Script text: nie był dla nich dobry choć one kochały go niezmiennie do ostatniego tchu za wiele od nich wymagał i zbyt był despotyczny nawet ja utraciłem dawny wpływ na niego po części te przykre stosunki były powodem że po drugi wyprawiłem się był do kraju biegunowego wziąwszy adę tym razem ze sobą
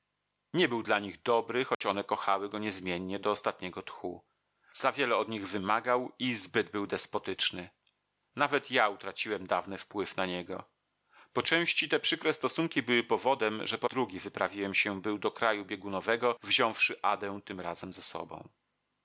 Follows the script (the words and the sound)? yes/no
no